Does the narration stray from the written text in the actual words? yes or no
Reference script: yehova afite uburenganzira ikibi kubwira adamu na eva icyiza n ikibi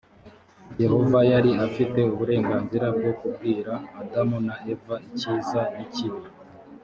yes